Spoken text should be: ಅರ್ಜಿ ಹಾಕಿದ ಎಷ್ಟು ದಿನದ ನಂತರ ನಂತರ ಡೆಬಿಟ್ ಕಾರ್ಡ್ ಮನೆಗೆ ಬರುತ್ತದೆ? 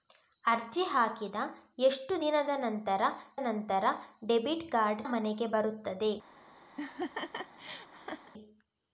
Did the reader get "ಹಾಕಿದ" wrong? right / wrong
right